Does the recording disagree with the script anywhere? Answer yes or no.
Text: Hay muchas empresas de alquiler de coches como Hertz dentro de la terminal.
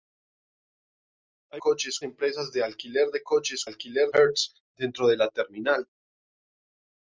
yes